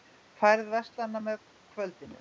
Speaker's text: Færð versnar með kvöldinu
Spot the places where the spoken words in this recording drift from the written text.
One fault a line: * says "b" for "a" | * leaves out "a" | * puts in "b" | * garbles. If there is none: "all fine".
all fine